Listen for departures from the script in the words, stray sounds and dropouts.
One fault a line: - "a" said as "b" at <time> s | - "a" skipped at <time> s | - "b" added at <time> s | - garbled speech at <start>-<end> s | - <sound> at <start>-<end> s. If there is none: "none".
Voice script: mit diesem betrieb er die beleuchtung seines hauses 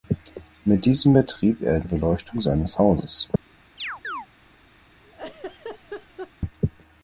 - "die" skipped at 1.8 s
- chirp at 3.8-4.3 s
- laugh at 5.0-6.3 s